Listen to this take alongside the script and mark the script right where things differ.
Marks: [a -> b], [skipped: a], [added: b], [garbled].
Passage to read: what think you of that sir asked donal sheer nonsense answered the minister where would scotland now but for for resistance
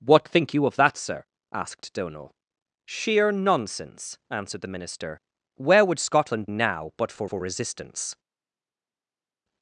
what think you of that sir asked donal sheer nonsense answered the minister where would scotland now but for for resistance